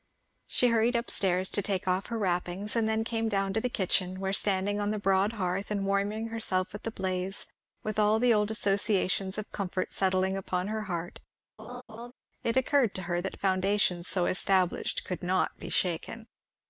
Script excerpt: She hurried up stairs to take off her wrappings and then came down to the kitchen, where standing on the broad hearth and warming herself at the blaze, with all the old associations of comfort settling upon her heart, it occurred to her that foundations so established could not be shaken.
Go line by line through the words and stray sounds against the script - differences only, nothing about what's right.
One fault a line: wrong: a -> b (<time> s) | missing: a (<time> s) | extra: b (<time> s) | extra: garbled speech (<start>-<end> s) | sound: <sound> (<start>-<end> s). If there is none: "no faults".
sound: laugh (11.6-12.1 s)